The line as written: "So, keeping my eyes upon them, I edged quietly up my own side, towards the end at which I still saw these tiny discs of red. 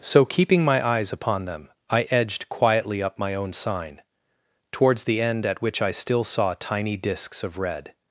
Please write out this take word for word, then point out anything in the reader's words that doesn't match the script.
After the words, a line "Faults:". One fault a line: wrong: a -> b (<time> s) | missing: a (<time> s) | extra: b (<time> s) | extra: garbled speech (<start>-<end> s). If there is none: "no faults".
"So, keeping my eyes upon them, I edged quietly up my own sign, towards the end at which I still saw tiny discs of red.
Faults:
wrong: side -> sign (3.5 s)
missing: these (6.5 s)